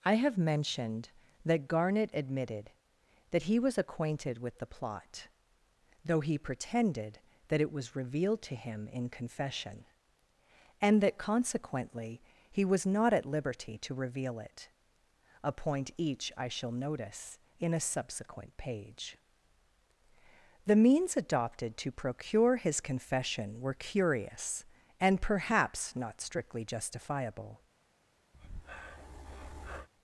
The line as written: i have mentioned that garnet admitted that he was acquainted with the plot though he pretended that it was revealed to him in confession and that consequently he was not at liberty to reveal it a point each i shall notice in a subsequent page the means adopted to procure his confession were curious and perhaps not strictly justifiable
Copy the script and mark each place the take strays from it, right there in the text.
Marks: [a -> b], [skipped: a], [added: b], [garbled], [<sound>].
i have mentioned that garnet admitted that he was acquainted with the plot though he pretended that it was revealed to him in confession and that consequently he was not at liberty to reveal it a point each i shall notice in a subsequent page the means adopted to procure his confession were curious and perhaps not strictly justifiable [breath]